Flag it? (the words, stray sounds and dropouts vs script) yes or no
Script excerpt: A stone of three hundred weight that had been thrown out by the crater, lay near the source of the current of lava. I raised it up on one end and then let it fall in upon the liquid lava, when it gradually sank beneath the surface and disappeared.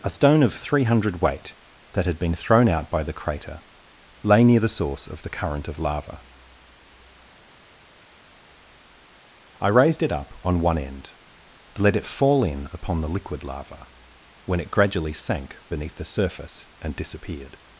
yes